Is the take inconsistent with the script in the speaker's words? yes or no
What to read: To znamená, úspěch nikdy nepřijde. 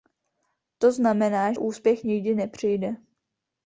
no